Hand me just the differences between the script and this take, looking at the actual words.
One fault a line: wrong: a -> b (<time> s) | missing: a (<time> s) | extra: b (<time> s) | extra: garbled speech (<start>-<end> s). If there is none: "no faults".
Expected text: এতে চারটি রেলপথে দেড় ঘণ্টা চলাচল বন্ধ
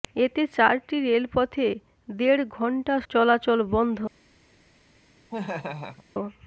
no faults